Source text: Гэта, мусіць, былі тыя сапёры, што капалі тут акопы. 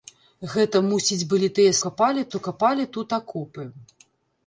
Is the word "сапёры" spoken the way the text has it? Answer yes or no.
no